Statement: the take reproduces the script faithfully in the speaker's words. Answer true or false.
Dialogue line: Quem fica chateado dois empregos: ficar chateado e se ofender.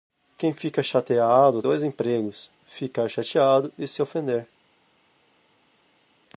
true